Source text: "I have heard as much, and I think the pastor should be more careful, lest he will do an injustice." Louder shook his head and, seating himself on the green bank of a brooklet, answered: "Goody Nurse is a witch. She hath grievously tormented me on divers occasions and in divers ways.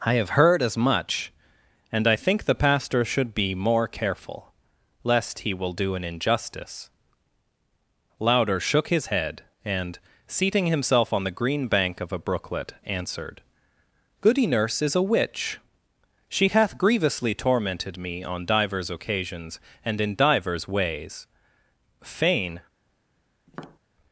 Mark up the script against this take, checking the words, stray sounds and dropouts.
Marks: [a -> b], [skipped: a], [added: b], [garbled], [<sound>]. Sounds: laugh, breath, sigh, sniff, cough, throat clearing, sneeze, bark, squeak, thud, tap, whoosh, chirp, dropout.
"I have heard as much, and I think the pastor should be more careful, lest he will do an injustice." Louder shook his head and, seating himself on the green bank of a brooklet, answered: "Goody Nurse is a witch. She hath grievously tormented me on divers occasions and in divers ways. [added: Fain] [tap]